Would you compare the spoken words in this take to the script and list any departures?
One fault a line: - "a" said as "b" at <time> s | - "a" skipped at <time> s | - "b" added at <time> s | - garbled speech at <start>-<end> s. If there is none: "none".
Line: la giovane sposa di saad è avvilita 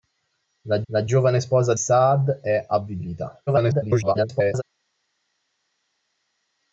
- "la" added at 0.9 s
- "di" skipped at 1.7 s
- garbled speech at 3.5-4.6 s